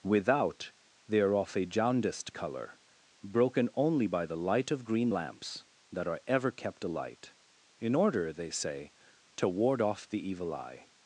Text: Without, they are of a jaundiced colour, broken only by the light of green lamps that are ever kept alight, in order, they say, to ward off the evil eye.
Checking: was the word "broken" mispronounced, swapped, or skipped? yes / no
no